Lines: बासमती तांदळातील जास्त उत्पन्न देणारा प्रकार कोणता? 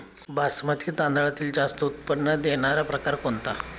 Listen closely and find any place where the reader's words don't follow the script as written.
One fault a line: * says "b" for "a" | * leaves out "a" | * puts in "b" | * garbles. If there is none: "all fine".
all fine